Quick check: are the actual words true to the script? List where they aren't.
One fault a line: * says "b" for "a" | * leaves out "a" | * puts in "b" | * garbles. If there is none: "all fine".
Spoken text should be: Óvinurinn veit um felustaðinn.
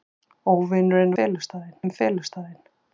* says "felustaðinn" for "veit"